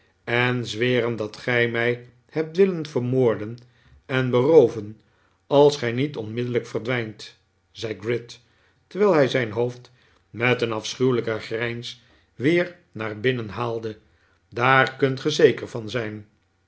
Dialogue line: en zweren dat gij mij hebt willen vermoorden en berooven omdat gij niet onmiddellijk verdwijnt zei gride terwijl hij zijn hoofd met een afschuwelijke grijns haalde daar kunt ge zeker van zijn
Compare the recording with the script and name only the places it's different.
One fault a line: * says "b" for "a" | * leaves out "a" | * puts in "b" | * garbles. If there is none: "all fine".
* says "als" for "omdat"
* puts in "weer naar binnen"